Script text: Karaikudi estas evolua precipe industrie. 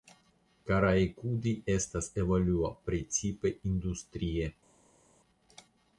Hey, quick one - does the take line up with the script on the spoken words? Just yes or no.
yes